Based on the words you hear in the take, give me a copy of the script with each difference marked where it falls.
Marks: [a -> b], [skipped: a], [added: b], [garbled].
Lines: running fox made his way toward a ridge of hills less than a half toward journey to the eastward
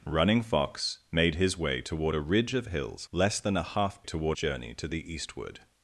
running fox made his way toward a ridge of hills less than a half toward journey to the eastward